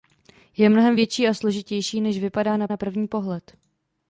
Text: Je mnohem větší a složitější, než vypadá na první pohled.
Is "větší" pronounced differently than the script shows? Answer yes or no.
no